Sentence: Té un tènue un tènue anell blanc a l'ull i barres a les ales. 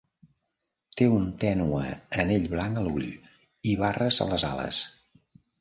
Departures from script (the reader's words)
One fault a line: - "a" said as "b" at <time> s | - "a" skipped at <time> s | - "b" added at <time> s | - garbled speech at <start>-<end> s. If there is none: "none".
- "un tènue" skipped at 1.8 s